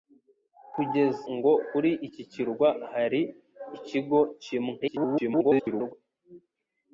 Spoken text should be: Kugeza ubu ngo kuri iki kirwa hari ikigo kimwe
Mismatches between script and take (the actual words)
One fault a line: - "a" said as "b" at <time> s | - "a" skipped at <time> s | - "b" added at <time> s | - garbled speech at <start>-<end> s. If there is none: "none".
- "ubu" skipped at 1.2 s
- garbled speech at 4.8-5.9 s